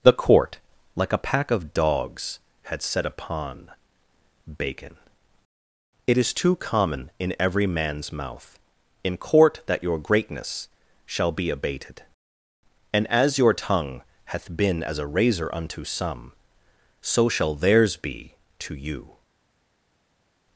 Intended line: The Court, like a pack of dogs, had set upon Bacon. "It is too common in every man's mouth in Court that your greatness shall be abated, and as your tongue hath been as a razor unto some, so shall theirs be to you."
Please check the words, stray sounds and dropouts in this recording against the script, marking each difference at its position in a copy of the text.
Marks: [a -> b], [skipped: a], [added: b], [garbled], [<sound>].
The Court, like a pack of dogs, had set upon Bacon. "It is too common in every man's mouth in Court that your greatness shall be abated, and as your tongue hath been as a razor unto some, so shall theirs be to you."